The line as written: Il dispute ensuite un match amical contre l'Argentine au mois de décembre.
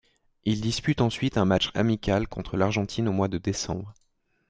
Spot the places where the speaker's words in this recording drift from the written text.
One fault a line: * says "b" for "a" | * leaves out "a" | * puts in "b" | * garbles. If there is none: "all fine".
all fine